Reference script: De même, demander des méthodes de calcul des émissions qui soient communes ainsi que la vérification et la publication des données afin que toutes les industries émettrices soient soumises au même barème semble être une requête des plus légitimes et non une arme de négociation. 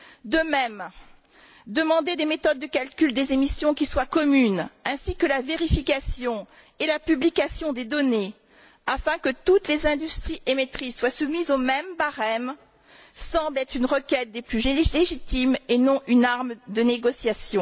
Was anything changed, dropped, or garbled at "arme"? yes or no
no